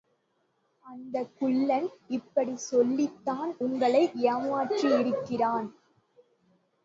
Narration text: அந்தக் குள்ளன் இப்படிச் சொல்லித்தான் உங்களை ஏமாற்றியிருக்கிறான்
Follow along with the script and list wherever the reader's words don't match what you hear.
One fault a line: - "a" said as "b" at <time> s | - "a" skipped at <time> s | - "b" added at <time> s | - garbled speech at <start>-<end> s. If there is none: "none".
none